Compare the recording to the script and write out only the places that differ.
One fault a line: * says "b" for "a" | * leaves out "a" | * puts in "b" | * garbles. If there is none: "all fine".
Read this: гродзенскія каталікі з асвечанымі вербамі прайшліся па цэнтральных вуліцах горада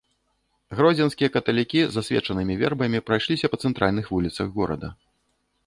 all fine